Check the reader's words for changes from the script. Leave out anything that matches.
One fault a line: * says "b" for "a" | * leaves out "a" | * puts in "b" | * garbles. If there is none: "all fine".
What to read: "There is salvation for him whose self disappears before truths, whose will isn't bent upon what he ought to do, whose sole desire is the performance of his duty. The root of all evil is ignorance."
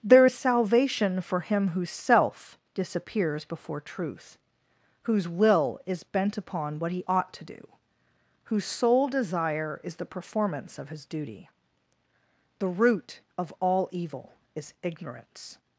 * says "truth" for "truths"
* says "is" for "isn't"